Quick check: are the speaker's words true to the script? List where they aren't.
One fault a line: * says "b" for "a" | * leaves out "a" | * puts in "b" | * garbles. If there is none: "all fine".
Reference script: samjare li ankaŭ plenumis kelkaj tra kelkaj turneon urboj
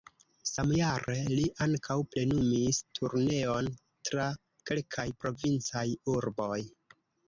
* says "turneon" for "kelkaj"
* says "provincaj" for "turneon"